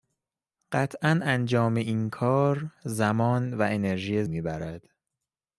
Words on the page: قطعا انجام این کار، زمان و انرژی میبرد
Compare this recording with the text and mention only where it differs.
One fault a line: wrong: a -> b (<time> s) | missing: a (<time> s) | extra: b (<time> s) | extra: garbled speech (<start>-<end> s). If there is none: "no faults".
no faults